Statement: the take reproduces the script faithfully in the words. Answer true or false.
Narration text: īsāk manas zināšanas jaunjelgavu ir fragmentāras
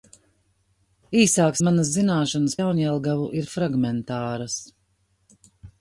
true